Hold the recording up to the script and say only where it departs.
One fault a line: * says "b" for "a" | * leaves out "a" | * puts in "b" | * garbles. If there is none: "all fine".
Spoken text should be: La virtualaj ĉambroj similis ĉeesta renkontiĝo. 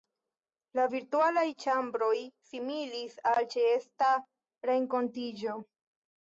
* puts in "al"